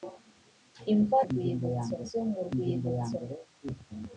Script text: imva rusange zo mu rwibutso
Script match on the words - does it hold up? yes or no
no